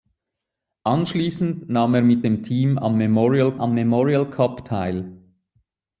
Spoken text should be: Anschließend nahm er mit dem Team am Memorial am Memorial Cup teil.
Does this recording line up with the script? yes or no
yes